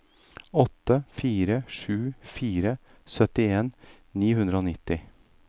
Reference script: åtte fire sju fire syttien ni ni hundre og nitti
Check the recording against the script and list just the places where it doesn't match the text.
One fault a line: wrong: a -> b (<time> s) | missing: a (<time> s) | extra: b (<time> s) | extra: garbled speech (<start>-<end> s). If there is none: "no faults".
missing: ni (4.3 s)